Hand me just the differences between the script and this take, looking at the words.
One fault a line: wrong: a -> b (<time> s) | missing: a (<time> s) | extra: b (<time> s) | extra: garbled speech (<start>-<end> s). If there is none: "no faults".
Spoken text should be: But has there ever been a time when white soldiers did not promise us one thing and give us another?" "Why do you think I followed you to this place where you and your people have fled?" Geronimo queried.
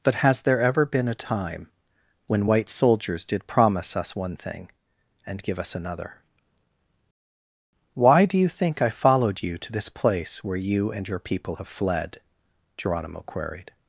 missing: not (3.5 s)